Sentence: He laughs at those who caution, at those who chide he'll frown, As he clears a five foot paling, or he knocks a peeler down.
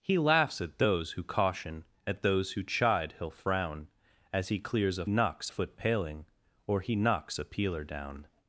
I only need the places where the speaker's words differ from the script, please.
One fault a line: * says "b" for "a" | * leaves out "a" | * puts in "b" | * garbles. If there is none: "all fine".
* says "knocks" for "five"